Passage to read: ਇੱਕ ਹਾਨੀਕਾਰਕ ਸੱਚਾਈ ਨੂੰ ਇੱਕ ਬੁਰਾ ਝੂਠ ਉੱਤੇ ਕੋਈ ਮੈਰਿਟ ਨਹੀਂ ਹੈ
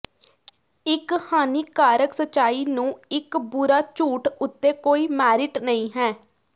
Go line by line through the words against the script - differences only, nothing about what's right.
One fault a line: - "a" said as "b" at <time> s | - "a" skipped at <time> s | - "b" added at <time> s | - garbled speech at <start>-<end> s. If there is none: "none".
none